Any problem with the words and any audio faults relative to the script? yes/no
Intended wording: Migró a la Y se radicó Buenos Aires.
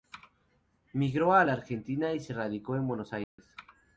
yes